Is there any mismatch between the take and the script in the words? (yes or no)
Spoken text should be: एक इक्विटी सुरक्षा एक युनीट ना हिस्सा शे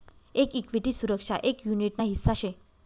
no